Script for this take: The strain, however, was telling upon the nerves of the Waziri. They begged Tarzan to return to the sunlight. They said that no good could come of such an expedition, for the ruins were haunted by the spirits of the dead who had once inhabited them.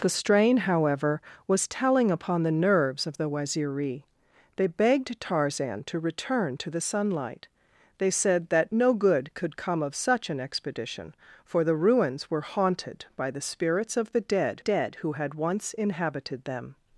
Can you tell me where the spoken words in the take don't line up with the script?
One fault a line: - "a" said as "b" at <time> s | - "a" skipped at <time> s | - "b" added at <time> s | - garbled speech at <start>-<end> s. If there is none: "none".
- "dead" added at 14.6 s